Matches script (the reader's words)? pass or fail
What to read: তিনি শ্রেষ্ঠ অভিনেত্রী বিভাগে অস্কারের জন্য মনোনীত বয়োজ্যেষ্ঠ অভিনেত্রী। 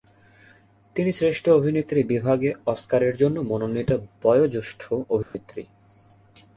pass